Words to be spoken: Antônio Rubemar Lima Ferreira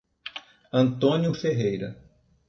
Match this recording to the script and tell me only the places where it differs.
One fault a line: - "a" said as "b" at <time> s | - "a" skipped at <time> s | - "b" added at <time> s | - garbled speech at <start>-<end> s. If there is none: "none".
- "Rubemar Lima" skipped at 1.3 s